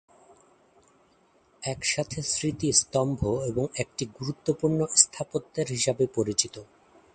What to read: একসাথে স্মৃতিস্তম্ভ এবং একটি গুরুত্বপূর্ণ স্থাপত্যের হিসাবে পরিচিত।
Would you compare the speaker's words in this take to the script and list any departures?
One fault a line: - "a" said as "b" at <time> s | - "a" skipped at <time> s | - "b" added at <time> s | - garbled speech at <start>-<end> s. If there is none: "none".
none